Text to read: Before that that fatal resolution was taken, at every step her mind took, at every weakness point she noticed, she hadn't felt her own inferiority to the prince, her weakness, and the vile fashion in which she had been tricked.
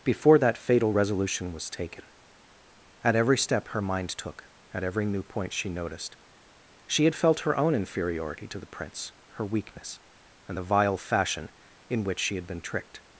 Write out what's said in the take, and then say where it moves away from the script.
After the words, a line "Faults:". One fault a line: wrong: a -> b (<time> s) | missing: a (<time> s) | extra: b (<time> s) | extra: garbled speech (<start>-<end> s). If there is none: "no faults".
Before that fatal resolution was taken, at every step her mind took, at every new point she noticed, she had felt her own inferiority to the prince, her weakness, and the vile fashion in which she had been tricked.
Faults:
missing: that (0.6 s)
wrong: weakness -> new (5.0 s)
wrong: hadn't -> had (7.1 s)